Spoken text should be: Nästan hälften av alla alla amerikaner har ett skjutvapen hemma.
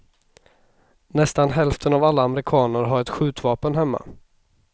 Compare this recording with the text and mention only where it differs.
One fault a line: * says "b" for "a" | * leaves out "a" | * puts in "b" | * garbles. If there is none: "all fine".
* leaves out "alla"